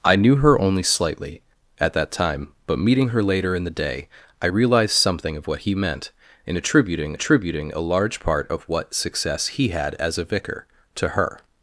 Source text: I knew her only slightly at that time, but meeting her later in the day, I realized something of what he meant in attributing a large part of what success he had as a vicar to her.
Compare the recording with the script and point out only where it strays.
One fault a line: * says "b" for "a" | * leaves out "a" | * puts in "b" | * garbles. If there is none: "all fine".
* puts in "attributing"